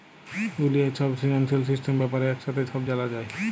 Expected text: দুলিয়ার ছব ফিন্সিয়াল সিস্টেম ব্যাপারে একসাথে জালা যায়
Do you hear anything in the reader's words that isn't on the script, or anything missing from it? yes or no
yes